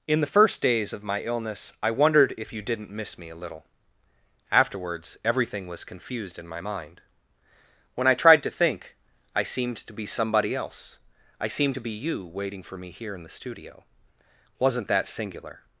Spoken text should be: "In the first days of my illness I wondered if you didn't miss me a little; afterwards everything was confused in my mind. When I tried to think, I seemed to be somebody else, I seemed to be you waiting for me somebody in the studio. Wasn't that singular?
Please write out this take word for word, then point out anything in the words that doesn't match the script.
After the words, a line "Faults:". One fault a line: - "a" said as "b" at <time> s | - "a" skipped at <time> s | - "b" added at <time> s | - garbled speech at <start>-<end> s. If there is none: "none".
"In the first days of my illness I wondered if you didn't miss me a little; afterwards everything was confused in my mind. When I tried to think, I seemed to be somebody else, I seemed to be you waiting for me here in the studio. Wasn't that singular?
Faults:
- "somebody" said as "here" at 12.9 s